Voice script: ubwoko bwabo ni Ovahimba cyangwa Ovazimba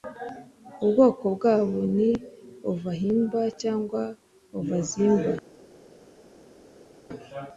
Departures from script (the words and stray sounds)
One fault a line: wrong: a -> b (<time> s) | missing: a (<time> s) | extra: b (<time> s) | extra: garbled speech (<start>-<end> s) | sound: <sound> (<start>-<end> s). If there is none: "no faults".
no faults